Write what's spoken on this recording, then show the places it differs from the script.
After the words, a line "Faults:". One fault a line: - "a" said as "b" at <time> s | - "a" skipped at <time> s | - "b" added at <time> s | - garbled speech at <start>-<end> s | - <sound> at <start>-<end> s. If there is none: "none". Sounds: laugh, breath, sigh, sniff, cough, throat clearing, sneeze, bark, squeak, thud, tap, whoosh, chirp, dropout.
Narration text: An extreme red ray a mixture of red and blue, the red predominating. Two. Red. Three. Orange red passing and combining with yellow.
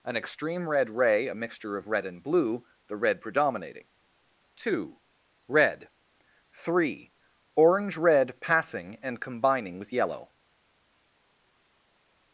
An extreme red ray a mixture of red and blue, the red predominating. Two. Red. Three. Orange red passing and combining with yellow.
Faults:
none